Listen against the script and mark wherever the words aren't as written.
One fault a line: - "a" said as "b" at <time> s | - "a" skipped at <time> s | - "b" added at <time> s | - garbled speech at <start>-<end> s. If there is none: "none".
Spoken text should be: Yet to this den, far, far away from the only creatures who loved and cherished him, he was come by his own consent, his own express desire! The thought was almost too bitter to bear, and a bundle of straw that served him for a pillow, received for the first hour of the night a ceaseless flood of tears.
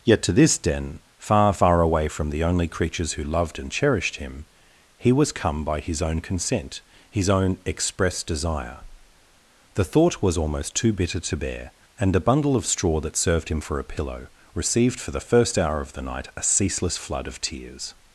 none